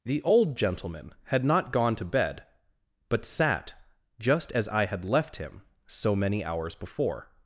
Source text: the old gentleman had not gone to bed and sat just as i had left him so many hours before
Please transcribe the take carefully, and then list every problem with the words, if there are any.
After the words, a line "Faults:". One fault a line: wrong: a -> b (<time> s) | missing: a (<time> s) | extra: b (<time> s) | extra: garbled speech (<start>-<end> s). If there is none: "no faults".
the old gentleman had not gone to bed but sat just as i had left him so many hours before
Faults:
wrong: and -> but (3.1 s)